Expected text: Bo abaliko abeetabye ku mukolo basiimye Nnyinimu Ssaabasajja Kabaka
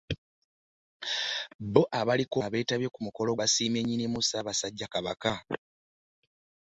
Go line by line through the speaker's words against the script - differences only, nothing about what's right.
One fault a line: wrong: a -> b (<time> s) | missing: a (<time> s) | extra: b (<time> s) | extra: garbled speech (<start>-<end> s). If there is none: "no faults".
no faults